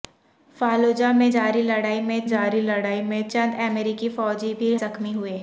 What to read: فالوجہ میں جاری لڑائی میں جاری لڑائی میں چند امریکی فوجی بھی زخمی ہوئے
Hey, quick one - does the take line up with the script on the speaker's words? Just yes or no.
yes